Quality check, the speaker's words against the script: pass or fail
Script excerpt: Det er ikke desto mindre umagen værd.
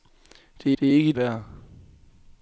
fail